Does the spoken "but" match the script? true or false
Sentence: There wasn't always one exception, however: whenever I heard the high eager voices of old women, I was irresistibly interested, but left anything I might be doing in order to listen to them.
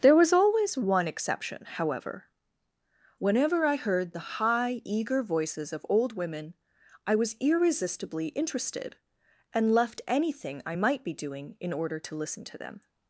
false